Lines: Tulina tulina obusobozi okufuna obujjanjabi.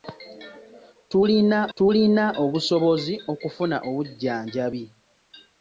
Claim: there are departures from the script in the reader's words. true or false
false